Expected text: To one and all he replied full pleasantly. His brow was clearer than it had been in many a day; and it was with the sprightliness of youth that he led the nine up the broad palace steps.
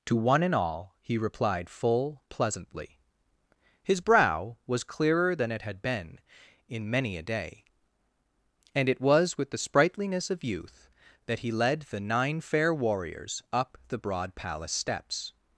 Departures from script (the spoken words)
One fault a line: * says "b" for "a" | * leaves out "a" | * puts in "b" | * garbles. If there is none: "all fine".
* puts in "fair warriors"